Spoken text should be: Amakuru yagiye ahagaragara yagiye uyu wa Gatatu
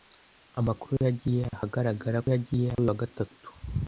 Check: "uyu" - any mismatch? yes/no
no